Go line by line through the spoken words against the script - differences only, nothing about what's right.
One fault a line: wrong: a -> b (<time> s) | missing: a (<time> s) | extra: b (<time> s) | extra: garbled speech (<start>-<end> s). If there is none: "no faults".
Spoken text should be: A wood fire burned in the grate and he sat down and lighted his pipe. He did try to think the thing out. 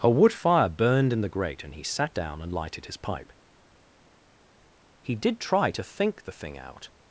no faults